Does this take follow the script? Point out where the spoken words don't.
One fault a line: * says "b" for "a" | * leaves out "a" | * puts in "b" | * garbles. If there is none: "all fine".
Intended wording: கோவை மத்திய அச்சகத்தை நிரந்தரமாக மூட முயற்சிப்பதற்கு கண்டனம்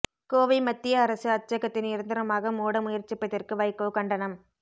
* puts in "அரசு"
* puts in "வைகோ"